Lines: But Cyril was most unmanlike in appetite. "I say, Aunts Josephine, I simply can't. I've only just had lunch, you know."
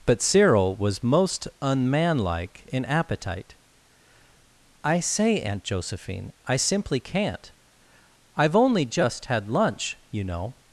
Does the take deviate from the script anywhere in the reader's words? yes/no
yes